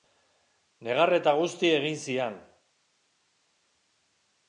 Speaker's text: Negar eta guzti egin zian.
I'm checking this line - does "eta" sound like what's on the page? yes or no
yes